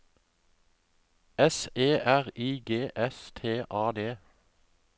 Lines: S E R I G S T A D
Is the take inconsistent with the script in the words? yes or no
no